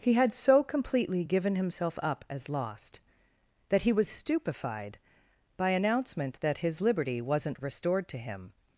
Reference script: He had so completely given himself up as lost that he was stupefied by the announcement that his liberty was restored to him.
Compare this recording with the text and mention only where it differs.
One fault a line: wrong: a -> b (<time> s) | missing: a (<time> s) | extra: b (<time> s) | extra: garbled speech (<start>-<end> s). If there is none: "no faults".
missing: the (5.7 s)
wrong: was -> wasn't (7.2 s)